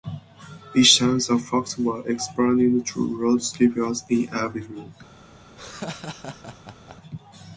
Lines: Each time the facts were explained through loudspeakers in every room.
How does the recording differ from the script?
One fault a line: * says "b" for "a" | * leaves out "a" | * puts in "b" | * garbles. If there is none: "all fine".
all fine